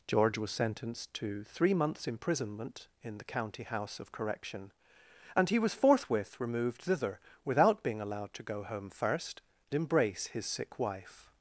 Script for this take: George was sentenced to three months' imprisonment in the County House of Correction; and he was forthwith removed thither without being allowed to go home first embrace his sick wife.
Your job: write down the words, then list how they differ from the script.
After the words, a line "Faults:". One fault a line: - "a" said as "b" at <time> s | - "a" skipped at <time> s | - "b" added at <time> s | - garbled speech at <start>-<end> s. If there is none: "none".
George was sentenced to three months' imprisonment in the County House of Correction; and he was forthwith removed thither without being allowed to go home first embrace his sick wife.
Faults:
none